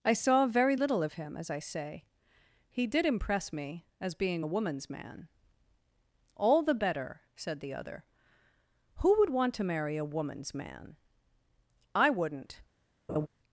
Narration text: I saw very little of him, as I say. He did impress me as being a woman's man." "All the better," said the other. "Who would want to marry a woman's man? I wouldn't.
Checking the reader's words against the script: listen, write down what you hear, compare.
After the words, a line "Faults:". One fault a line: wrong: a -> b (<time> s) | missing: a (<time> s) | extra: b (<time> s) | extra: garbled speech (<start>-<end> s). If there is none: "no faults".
I saw very little of him, as I say. He did impress me as being a woman's man." "All the better," said the other. "Who would want to marry a woman's man? I wouldn't.
Faults:
no faults